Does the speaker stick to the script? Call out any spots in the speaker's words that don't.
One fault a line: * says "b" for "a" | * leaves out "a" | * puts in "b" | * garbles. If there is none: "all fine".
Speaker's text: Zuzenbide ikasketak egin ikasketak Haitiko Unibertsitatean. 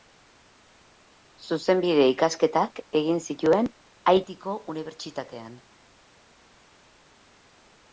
* says "zituen" for "ikasketak"